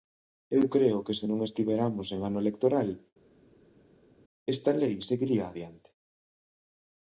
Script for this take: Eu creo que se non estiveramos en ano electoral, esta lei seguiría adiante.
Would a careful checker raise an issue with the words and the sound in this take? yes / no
no